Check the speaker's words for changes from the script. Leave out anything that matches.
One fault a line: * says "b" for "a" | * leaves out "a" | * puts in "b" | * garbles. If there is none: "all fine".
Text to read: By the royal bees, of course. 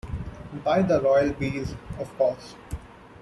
all fine